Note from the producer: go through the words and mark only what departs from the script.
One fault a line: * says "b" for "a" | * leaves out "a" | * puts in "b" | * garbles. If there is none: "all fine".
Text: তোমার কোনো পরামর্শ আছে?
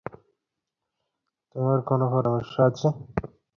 all fine